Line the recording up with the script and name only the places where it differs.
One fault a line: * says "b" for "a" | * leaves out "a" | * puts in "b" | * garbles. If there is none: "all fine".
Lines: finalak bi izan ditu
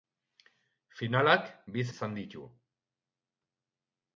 all fine